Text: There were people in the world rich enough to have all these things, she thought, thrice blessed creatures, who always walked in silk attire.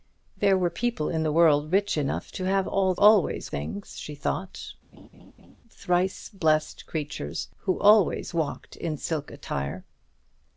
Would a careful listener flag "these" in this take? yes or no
yes